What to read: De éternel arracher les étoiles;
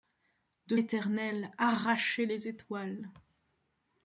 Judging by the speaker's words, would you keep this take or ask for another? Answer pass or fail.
pass